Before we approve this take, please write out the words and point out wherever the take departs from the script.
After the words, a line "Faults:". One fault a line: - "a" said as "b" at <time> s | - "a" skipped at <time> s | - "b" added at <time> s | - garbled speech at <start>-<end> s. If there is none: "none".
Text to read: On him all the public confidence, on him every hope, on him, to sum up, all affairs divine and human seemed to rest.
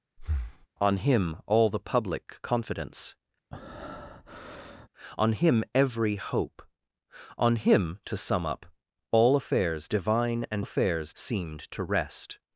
On him all the public confidence, on him every hope, on him, to sum up, all affairs divine and affairs seemed to rest.
Faults:
- "human" said as "affairs" at 10.6 s